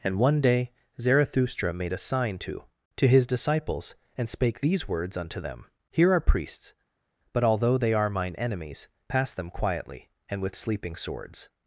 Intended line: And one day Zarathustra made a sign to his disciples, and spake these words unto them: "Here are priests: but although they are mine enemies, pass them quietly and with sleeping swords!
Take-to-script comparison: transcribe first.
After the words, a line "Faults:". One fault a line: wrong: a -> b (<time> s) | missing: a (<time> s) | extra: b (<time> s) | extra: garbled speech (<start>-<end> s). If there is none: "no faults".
And one day Zarathustra made a sign to to his disciples, and spake these words unto them: "Here are priests: but although they are mine enemies, pass them quietly and with sleeping swords!
Faults:
extra: to (3.0 s)